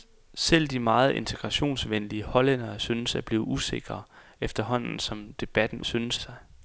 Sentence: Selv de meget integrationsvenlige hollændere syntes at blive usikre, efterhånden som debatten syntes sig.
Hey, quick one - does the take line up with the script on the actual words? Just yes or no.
yes